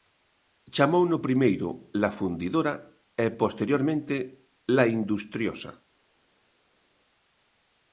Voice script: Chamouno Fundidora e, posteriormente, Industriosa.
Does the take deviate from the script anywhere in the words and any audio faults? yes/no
yes